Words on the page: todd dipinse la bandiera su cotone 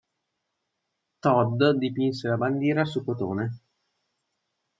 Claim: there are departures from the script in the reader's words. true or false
false